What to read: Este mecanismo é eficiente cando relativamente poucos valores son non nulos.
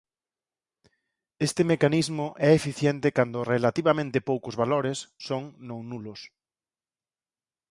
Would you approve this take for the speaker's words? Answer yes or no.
yes